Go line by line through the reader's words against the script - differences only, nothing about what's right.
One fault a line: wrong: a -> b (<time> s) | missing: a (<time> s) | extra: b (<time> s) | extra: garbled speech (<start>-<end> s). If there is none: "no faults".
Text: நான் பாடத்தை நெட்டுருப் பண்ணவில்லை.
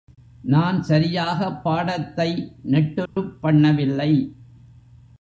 extra: சரியாகப் (0.8 s)